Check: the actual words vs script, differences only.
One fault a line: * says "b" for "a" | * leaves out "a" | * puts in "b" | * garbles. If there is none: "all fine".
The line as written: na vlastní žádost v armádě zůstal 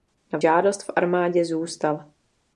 * leaves out "vlastní"